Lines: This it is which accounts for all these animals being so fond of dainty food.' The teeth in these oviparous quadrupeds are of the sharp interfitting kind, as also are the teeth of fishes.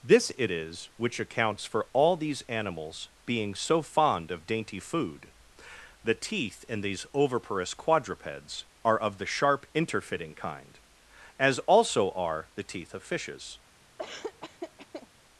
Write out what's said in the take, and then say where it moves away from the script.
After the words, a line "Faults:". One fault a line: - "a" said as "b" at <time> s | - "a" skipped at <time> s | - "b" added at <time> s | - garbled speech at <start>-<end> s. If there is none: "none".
This it is which accounts for all these animals being so fond of dainty food.' The teeth in these oviparous quadrupeds are of the sharp interfitting kind, as also are the teeth of fishes.
Faults:
none